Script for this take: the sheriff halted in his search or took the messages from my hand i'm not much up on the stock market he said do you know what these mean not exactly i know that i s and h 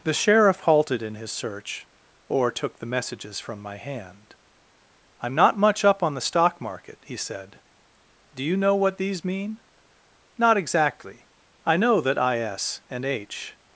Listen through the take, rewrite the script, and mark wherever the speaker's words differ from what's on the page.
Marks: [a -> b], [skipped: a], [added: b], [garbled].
the sheriff halted in his search or took the messages from my hand i'm not much up on the stock market he said do you know what these mean not exactly i know that i s and h